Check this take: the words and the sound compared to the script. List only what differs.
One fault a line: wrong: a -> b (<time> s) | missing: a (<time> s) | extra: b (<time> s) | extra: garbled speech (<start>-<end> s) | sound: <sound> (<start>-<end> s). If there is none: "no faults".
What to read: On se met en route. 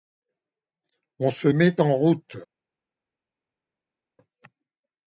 no faults